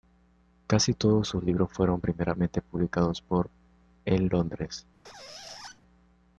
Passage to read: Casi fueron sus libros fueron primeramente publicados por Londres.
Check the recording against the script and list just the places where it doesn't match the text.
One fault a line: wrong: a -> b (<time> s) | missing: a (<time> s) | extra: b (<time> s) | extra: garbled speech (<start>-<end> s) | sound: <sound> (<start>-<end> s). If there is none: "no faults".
wrong: fueron -> todos (0.9 s)
extra: en (4.0 s)
sound: squeak (5.0-5.8 s)